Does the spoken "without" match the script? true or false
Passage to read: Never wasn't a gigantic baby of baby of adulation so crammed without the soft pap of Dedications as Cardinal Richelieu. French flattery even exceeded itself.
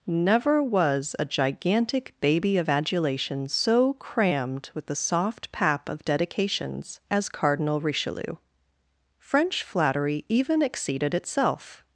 false